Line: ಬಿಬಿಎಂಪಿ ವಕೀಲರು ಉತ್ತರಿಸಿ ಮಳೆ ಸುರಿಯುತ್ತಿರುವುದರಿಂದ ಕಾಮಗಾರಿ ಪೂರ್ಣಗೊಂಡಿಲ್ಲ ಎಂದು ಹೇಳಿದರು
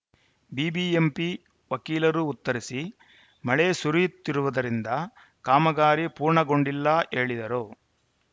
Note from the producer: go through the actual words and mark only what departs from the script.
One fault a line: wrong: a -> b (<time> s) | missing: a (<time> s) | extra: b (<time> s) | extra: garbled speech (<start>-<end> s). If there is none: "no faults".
missing: ಎಂದು (6.9 s)